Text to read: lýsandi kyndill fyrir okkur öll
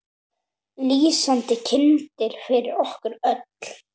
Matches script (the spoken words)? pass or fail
pass